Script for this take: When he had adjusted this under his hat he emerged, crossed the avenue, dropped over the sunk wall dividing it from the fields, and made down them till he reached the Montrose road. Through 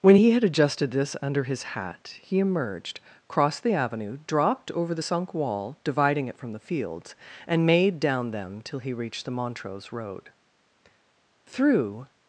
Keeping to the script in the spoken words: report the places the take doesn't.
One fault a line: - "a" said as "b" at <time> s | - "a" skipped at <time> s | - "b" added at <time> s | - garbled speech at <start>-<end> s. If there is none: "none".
none